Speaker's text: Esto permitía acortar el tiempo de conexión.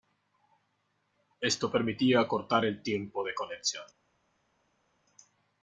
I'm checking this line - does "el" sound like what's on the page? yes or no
yes